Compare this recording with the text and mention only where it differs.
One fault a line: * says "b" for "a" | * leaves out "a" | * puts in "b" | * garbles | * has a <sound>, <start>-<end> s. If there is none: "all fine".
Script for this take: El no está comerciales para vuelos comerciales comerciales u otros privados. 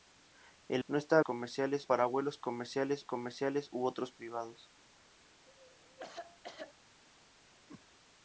* has a cough, 5.5-6.7 s
* has a whoosh, 7.7-7.8 s